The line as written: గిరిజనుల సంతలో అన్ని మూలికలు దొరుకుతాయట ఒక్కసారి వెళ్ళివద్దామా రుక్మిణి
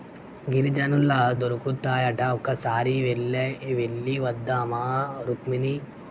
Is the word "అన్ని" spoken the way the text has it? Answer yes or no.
no